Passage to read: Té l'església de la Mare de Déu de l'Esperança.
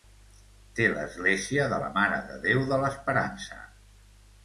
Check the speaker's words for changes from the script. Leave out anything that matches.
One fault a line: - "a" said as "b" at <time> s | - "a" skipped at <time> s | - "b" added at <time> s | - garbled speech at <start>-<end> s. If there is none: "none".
none